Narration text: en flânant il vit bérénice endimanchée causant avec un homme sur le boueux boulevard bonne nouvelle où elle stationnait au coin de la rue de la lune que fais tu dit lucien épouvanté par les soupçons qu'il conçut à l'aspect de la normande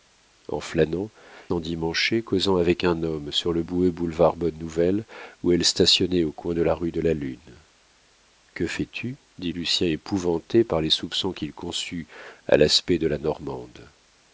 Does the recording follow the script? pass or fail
fail